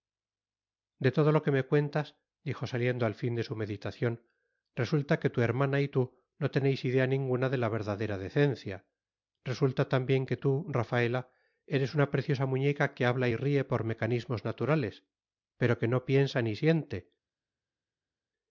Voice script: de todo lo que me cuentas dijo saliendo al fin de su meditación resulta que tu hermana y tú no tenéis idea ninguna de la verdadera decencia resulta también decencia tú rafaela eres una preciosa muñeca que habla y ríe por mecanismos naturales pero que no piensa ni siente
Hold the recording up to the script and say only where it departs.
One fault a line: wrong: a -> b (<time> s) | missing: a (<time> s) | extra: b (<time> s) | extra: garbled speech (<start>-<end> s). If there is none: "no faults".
wrong: decencia -> que (10.3 s)